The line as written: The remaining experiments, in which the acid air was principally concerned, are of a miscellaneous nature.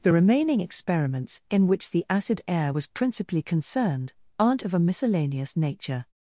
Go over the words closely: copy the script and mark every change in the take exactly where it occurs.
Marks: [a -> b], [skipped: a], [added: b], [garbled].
The remaining experiments, in which the acid air was principally concerned, [are -> aren't] of a miscellaneous nature.